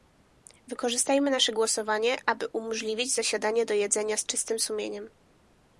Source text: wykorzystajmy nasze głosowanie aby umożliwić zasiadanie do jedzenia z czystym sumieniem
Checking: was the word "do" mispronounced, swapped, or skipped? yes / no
no